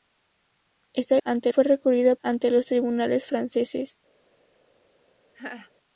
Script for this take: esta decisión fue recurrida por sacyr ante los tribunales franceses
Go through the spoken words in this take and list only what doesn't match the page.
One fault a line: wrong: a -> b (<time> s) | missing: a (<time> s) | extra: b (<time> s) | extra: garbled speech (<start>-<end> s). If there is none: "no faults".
wrong: decisión -> ante (1.2 s)
missing: por sacyr (2.1 s)